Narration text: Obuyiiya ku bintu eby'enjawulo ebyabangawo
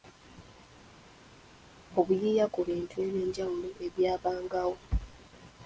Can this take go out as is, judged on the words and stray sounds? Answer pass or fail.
pass